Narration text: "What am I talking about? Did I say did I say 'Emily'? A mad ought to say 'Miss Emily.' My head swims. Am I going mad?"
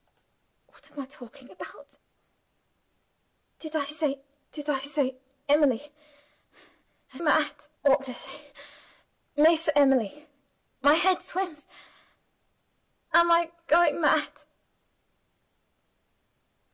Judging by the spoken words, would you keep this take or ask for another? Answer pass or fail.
pass